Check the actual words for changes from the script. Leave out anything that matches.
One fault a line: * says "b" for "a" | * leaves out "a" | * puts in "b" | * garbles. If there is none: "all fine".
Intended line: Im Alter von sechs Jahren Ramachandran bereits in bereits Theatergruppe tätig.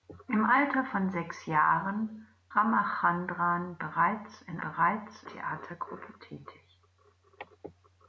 all fine